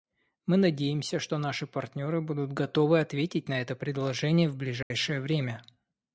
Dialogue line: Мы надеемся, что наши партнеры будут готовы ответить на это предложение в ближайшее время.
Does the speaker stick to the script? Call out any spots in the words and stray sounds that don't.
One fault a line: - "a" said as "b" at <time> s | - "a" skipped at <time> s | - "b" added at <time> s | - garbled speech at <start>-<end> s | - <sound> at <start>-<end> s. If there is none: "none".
- dropout at 4.8-4.9 s